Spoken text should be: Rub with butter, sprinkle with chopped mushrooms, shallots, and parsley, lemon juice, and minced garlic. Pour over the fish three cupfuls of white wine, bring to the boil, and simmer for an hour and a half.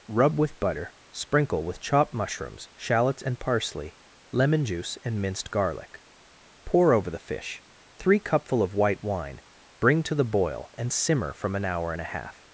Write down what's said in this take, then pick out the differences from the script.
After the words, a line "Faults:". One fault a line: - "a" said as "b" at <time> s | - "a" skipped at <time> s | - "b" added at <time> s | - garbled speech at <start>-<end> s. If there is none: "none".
Rub with butter, sprinkle with chopped mushrooms, shallots, and parsley, lemon juice, and minced garlic. Pour over the fish three cupful of white wine, bring to the boil, and simmer from an hour and a half.
Faults:
- "cupfuls" said as "cupful" at 8.2 s
- "for" said as "from" at 11.3 s